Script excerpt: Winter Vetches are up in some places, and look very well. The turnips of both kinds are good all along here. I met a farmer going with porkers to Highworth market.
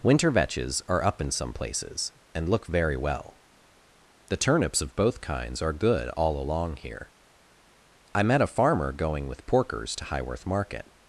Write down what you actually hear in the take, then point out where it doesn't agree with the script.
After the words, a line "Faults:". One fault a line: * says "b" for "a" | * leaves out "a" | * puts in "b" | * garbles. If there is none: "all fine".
Winter Vetches are up in some places, and look very well. The turnips of both kinds are good all along here. I met a farmer going with porkers to Highworth market.
Faults:
all fine